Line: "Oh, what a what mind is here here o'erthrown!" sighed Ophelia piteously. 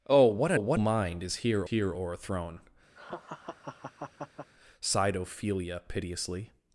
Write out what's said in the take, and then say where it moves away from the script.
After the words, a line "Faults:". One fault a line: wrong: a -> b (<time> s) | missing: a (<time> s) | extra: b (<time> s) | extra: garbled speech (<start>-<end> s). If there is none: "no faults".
"Oh, what a what mind is here here o'erthrown!" sighed Ophelia piteously.
Faults:
no faults